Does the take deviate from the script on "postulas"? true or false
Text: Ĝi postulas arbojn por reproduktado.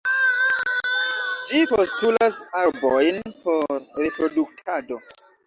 false